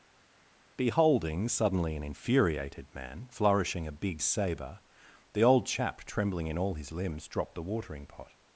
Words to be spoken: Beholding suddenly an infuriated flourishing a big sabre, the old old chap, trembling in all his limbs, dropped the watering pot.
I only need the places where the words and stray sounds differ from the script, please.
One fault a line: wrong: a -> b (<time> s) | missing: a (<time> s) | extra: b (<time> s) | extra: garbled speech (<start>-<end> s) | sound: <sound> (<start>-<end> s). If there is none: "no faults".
extra: man (2.9 s)
missing: old (5.6 s)